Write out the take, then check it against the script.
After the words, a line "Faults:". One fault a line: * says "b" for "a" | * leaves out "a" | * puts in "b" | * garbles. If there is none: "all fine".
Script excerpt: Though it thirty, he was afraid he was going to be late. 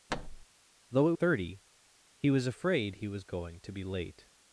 Though it thirty, he was afraid he was going to be late.
Faults:
all fine